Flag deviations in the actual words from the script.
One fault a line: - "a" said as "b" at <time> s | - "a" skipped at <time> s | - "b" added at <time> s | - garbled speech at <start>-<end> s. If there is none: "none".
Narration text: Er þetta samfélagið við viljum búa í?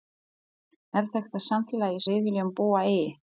none